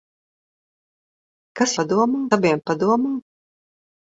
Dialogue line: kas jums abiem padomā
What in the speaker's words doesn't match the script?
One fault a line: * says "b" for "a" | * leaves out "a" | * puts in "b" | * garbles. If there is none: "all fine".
* says "padomā" for "jums"